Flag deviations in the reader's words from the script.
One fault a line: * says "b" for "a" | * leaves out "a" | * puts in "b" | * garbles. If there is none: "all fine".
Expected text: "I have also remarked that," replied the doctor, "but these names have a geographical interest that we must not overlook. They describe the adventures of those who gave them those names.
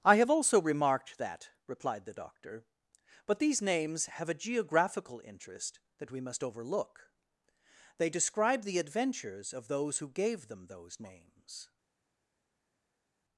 * leaves out "not"